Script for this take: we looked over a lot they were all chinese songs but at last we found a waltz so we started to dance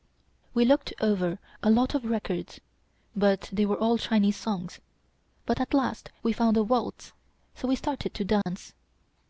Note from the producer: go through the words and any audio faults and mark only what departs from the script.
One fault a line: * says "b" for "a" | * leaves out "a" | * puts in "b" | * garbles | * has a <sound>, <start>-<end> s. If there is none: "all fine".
* puts in "of records but"
* has a dropout, 8.4-8.5 s